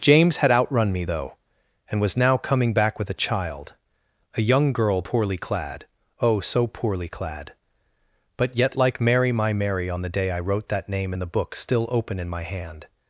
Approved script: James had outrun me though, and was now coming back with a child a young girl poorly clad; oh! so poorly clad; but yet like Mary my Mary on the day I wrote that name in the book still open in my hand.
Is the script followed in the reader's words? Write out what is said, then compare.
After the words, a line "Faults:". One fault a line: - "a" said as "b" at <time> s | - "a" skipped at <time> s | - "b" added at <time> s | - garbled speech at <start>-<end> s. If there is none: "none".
James had outrun me though, and was now coming back with a child a young girl poorly clad; oh! so poorly clad; but yet like Mary my Mary on the day I wrote that name in the book still open in my hand.
Faults:
none